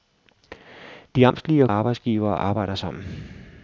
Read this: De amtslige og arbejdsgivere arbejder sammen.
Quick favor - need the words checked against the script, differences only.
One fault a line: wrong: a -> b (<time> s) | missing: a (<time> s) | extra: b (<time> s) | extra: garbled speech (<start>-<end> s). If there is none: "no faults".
no faults